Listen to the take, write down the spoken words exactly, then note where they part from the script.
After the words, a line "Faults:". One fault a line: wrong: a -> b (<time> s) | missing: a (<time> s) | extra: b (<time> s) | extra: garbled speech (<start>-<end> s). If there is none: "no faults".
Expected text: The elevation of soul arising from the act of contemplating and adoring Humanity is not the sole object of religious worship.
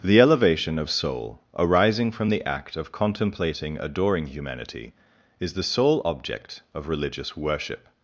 The elevation of soul arising from the act of contemplating adoring Humanity is the sole object of religious worship.
Faults:
missing: and (3.8 s)
missing: not (5.5 s)